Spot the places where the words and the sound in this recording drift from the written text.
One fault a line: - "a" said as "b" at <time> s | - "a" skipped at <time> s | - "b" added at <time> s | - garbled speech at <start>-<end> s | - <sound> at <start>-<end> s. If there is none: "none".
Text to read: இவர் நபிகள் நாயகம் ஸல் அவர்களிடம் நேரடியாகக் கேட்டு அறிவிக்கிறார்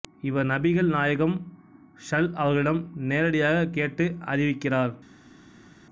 none